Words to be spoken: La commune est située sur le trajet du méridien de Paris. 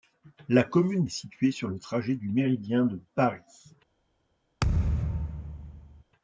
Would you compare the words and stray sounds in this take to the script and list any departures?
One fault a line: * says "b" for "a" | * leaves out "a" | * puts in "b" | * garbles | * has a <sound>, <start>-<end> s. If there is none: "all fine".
* has a thud, 4.6-6.0 s